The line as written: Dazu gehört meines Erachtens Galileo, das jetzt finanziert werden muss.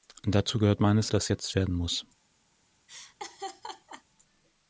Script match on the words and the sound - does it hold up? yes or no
no